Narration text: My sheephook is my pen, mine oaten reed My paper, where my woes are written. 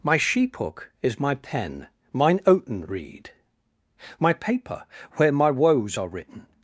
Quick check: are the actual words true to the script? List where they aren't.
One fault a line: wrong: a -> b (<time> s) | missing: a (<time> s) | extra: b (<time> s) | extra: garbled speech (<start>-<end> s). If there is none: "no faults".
no faults